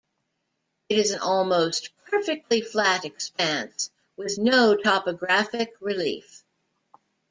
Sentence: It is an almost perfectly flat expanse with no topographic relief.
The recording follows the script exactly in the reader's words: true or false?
true